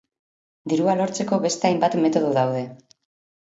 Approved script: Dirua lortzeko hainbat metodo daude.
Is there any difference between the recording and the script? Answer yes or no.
yes